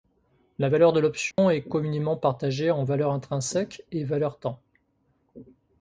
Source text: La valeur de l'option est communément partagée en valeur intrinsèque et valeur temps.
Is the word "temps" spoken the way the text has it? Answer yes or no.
yes